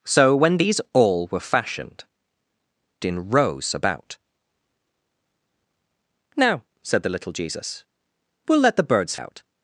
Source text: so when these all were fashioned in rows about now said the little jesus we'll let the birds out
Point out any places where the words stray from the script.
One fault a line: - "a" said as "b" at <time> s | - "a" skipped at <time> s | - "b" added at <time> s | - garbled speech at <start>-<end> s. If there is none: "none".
none